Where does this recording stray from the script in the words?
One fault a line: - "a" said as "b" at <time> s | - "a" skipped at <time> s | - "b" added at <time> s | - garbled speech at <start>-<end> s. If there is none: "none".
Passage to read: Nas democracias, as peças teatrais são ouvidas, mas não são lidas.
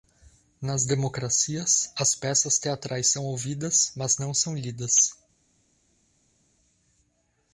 none